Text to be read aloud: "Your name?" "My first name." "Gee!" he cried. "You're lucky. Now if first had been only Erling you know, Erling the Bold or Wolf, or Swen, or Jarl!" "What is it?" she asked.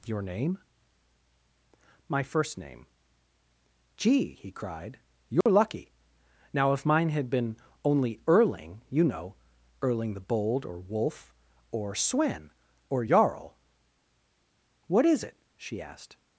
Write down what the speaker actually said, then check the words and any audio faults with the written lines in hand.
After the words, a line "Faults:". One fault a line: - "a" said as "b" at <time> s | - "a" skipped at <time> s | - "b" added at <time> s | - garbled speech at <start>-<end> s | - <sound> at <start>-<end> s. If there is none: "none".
"Your name?" "My first name." "Gee!" he cried. "You're lucky. Now if mine had been only Erling you know, Erling the Bold or Wolf, or Swen, or Jarl!" "What is it?" she asked.
Faults:
- dropout at 5.4-5.5 s
- "first" said as "mine" at 6.9 s